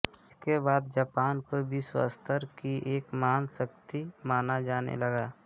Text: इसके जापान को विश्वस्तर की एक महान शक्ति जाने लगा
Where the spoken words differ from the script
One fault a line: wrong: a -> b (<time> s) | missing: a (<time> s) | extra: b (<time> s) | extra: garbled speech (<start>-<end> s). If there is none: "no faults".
extra: बाद (0.6 s)
extra: माना (4.3 s)